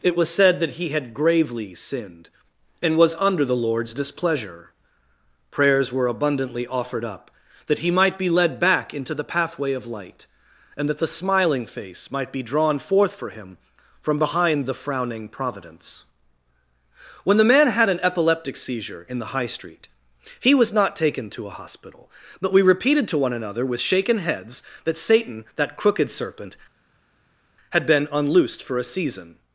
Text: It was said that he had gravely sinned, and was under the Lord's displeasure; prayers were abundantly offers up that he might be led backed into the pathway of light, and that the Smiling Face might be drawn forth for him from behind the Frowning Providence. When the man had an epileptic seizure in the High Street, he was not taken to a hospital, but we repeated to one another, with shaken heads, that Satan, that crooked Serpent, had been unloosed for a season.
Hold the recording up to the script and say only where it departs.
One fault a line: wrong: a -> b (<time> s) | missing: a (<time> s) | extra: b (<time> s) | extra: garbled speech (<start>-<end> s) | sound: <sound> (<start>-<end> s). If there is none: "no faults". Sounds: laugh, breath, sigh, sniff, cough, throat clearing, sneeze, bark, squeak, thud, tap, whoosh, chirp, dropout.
wrong: offers -> offered (6.7 s)
wrong: backed -> back (8.6 s)